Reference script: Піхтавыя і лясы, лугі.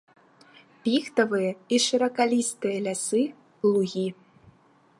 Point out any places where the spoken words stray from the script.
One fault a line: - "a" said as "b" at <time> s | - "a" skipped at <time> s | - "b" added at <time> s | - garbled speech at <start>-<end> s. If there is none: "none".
- "шыракалістыя" added at 1.9 s